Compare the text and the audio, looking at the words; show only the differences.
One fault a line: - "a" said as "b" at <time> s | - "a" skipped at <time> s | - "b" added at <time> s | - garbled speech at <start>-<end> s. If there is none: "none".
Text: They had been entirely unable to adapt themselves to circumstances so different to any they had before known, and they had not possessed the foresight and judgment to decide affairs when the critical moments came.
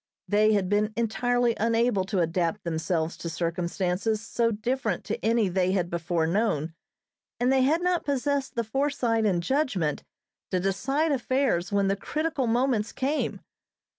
none